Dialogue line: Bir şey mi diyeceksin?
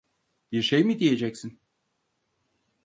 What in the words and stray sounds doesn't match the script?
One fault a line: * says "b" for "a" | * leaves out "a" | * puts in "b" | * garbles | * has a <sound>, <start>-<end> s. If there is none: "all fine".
all fine